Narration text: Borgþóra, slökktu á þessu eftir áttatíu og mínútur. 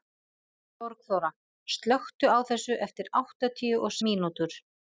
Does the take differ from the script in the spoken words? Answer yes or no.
no